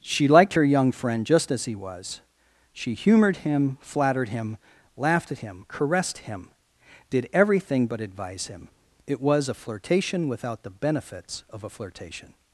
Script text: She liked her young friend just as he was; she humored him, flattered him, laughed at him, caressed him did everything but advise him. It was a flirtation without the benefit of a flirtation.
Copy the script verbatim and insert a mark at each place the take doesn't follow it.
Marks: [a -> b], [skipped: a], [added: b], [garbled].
She liked her young friend just as he was; she humored him, flattered him, laughed at him, caressed him did everything but advise him. It was a flirtation without the [benefit -> benefits] of a flirtation.